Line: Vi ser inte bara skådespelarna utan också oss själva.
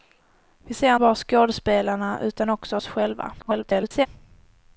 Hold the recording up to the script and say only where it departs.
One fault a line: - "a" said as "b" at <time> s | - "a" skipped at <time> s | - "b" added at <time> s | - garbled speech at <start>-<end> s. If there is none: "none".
- "inte" skipped at 0.9 s
- garbled speech at 3.4-4.1 s